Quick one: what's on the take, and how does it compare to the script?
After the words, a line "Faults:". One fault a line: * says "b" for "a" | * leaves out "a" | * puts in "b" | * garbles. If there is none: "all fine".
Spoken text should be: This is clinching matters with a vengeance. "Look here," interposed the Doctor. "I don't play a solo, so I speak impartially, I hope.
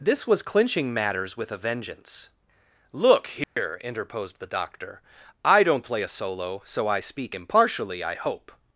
This was clinching matters with a vengeance. "Look here," interposed the Doctor. "I don't play a solo, so I speak impartially, I hope.
Faults:
* says "was" for "is"